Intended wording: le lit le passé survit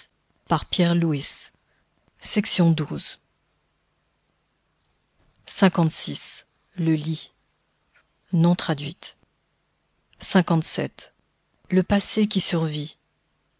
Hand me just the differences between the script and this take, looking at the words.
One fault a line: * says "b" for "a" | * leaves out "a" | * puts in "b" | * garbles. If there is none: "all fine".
* puts in "qui"